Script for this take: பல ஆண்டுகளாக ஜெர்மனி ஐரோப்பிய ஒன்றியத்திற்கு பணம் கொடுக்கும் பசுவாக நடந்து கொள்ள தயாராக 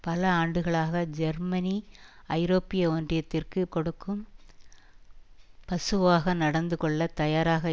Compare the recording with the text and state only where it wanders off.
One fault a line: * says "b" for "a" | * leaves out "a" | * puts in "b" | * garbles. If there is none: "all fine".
* leaves out "பணம்"